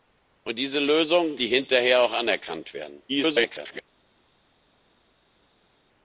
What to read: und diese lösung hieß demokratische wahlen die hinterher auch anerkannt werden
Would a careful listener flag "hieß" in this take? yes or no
yes